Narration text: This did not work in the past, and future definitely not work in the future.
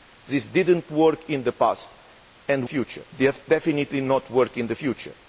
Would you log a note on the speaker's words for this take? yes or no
no